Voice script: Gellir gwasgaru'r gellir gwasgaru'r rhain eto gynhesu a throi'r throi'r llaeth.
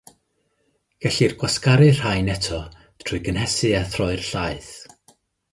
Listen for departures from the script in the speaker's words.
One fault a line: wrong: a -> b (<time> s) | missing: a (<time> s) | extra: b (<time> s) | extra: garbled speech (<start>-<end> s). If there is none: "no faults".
missing: gellir gwasgaru'r (2.0 s)
extra: trwy (3.0 s)
missing: throi'r (4.3 s)